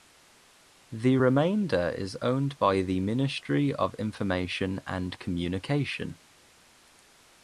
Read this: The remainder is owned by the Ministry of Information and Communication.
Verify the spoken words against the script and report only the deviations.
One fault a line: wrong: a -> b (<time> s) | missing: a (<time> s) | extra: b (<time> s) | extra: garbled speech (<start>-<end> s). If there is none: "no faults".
no faults